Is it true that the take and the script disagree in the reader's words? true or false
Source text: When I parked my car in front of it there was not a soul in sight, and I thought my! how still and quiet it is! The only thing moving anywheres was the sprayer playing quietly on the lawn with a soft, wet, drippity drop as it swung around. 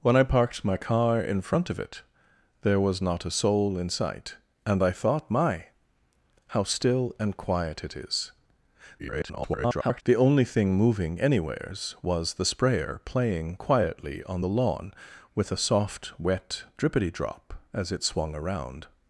true